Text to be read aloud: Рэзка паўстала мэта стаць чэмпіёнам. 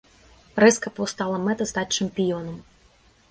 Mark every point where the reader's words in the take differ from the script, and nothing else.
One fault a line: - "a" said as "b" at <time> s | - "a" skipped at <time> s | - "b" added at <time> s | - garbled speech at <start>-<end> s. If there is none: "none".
none